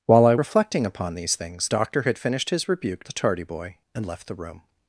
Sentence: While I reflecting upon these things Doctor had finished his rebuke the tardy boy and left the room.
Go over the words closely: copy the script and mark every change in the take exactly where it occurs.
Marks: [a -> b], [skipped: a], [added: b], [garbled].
While I reflecting upon these things Doctor had finished his rebuke the tardy boy and left the room.